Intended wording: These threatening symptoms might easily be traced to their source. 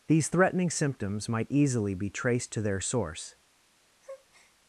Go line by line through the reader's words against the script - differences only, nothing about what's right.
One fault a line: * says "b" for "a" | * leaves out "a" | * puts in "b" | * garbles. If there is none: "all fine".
all fine